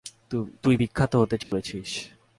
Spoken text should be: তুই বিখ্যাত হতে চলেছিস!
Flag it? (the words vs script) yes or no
no